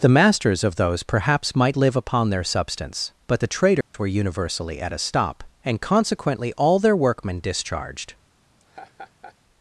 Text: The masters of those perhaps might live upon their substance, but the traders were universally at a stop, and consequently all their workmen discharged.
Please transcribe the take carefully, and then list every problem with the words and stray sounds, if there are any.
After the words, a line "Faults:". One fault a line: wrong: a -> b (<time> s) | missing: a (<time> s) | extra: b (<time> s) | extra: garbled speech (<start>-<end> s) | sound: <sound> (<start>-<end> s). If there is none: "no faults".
The masters of those perhaps might live upon their substance, but the traders were universally at a stop, and consequently all their workmen discharged.
Faults:
sound: dropout (3.8-3.9 s)
sound: laugh (8.6-9.4 s)